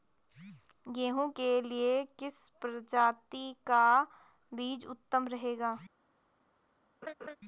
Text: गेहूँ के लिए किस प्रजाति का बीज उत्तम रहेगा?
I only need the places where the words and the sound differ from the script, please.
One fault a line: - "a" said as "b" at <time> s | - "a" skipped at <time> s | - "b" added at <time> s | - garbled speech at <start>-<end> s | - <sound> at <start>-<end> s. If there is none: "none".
- laugh at 7.0-7.4 s